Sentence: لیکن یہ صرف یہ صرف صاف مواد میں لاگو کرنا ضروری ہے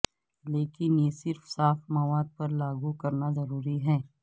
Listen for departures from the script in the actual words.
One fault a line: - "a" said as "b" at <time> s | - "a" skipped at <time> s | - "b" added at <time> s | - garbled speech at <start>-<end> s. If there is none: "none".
- "یہ صرف" skipped at 1.4 s
- "میں" said as "پر" at 2.4 s